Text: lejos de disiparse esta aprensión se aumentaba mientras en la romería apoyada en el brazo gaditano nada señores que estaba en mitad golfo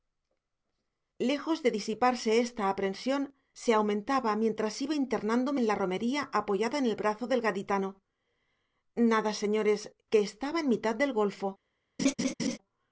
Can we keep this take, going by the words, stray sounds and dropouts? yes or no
no